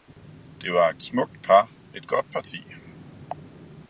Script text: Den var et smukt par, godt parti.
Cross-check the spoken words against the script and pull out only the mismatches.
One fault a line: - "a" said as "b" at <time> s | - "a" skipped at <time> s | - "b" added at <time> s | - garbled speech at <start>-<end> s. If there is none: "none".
- "Den" said as "Det" at 0.6 s
- "et" added at 2.0 s